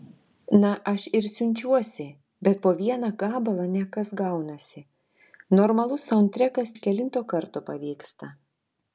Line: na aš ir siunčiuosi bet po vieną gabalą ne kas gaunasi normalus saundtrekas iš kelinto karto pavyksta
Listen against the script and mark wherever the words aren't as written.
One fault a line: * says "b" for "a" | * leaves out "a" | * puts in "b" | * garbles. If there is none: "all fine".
all fine